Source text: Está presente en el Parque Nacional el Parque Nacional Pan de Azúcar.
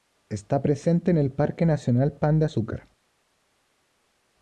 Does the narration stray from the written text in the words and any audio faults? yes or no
yes